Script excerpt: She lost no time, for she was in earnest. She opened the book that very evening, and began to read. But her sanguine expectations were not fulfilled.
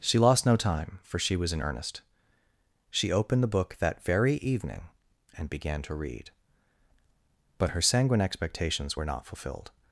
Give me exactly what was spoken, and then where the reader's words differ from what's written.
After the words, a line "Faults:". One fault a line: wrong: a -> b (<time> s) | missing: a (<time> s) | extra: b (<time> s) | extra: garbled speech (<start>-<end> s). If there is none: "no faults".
She lost no time, for she was in earnest. She opened the book that very evening, and began to read. But her sanguine expectations were not fulfilled.
Faults:
no faults